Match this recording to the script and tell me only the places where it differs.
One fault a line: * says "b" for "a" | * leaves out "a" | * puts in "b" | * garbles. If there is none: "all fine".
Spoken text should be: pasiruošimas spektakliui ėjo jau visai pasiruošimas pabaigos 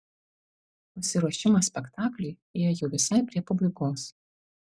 * says "prie" for "pasiruošimas"